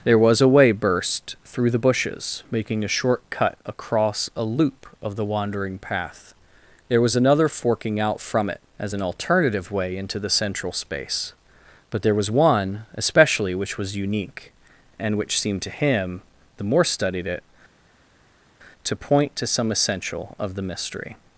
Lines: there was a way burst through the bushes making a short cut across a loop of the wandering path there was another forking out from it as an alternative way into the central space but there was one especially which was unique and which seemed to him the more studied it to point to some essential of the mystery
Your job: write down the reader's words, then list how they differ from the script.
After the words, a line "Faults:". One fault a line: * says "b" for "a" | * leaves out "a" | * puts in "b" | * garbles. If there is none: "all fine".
there was a way burst through the bushes making a short cut across a loop of the wandering path there was another forking out from it as an alternative way into the central space but there was one especially which was unique and which seemed to him the more studied it to point to some essential of the mystery
Faults:
all fine